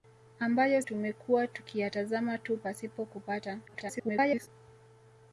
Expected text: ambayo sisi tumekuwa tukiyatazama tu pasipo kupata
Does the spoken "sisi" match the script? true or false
false